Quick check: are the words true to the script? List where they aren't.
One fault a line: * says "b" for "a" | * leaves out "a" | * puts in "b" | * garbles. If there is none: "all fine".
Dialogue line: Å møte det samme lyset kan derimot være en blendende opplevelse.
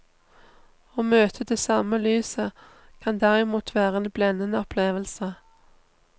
all fine